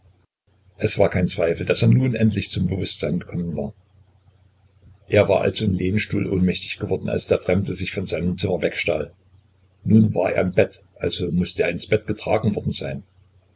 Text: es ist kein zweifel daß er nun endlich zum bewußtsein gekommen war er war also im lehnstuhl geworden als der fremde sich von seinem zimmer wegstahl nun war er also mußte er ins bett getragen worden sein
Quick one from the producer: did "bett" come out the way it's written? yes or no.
yes